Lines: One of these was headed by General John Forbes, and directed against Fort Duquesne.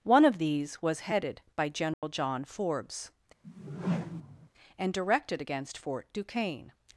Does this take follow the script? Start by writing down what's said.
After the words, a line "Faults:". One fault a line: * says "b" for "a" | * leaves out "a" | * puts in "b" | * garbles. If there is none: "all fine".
One of these was headed by General John Forbes, and directed against Fort Duquesne.
Faults:
all fine